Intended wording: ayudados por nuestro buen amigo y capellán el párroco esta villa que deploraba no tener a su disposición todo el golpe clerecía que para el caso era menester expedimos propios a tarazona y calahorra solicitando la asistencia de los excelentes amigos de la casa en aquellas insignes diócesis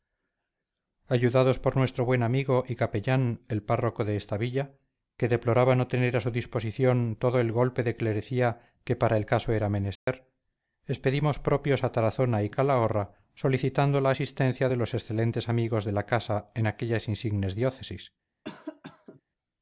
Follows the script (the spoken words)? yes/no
no